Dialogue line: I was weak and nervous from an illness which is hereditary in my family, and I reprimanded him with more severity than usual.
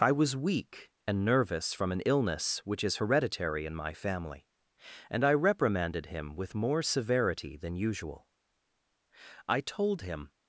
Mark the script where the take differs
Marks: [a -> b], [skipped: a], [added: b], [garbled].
I was weak and nervous from an illness which is hereditary in my family, and I reprimanded him with more severity than usual. [added: I told him]